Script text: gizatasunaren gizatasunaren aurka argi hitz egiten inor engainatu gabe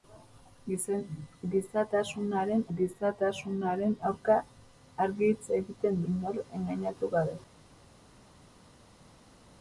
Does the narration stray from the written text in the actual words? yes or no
no